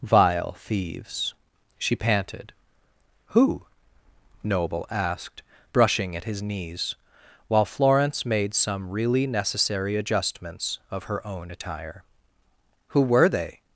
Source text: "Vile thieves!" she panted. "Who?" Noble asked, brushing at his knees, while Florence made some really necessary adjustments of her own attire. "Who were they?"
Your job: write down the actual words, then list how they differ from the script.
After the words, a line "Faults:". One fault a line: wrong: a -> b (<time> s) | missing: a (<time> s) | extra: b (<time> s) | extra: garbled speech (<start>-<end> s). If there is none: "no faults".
"Vile thieves!" she panted. "Who?" Noble asked, brushing at his knees, while Florence made some really necessary adjustments of her own attire. "Who were they?"
Faults:
no faults